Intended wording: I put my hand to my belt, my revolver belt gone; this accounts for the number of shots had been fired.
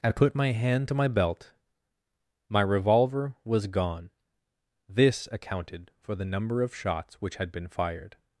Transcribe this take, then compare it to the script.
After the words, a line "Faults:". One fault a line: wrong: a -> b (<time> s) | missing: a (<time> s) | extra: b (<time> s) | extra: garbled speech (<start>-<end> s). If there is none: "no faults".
I put my hand to my belt, my revolver was gone; this accounted for the number of shots which had been fired.
Faults:
wrong: belt -> was (3.5 s)
wrong: accounts -> accounted (5.3 s)
extra: which (7.2 s)